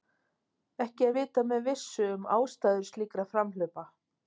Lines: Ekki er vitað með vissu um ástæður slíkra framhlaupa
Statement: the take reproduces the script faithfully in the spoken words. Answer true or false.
true